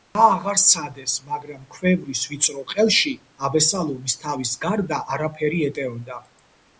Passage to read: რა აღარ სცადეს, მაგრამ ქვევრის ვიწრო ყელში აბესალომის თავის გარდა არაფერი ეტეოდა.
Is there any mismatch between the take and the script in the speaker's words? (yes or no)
no